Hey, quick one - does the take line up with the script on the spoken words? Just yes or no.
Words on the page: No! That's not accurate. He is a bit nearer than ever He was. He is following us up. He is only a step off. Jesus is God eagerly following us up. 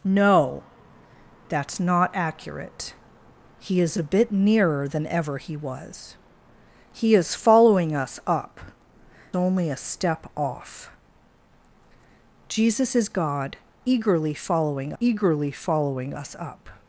no